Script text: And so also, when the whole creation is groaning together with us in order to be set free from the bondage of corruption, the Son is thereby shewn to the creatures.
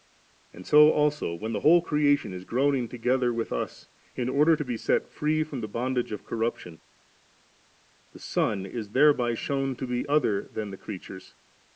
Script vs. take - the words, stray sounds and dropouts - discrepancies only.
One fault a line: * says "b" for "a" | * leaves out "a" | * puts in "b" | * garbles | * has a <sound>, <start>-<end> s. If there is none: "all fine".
* puts in "be other than"